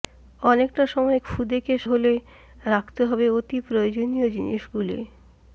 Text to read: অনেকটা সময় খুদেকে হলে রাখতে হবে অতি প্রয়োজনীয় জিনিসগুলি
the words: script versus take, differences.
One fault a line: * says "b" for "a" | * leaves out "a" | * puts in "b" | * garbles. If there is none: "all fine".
all fine